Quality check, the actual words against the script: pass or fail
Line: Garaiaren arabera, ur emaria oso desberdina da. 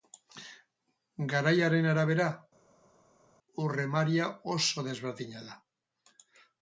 pass